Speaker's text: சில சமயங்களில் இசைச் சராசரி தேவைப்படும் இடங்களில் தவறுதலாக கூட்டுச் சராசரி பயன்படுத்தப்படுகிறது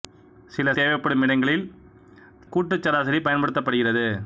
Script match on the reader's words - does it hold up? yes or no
no